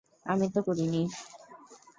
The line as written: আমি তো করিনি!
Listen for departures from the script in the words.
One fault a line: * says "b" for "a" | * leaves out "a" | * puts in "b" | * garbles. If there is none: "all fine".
all fine